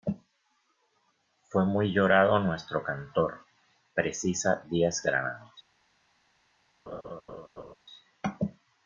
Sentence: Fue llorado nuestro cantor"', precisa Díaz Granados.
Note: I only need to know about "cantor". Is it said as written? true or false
true